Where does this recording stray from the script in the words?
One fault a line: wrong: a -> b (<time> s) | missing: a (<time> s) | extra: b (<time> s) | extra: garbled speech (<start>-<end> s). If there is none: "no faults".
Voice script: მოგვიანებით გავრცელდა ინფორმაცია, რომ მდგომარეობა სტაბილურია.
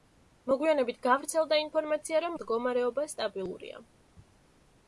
no faults